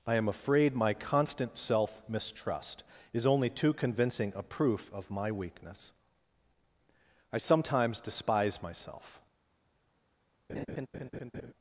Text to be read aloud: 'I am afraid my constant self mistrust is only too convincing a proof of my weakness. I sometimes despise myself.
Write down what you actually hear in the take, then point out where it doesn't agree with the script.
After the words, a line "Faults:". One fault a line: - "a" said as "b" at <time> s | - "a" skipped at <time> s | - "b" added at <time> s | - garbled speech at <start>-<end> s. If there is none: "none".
'I am afraid my constant self mistrust is only too convincing a proof of my weakness. I sometimes despise myself.
Faults:
none